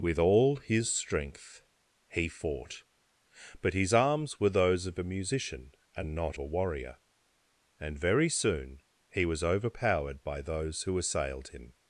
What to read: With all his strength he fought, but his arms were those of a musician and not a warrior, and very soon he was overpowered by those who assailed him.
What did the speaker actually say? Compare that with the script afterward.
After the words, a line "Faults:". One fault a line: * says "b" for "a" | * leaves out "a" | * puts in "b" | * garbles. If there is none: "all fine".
With all his strength he fought, but his arms were those of a musician and not a warrior, and very soon he was overpowered by those who assailed him.
Faults:
all fine